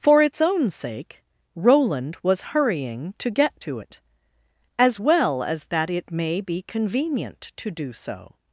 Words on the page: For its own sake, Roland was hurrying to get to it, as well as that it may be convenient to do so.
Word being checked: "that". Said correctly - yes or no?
yes